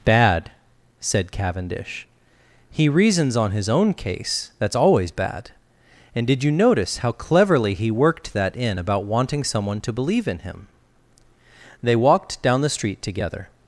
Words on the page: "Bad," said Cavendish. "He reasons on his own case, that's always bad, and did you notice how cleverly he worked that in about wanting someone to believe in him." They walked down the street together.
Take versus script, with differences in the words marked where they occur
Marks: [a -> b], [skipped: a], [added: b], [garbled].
"Bad," said Cavendish. "He reasons on his own case, that's always bad, and did you notice how cleverly he worked that in about wanting someone to believe in him." They walked down the street together.